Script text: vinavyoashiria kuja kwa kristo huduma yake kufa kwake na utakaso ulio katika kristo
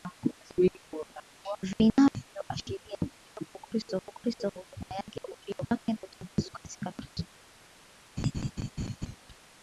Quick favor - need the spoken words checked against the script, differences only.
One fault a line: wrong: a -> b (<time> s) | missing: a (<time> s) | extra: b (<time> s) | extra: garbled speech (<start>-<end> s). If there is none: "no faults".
extra: kwa kristo (4.0 s)
wrong: kufa -> ulio (5.3 s)
missing: ulio (6.5 s)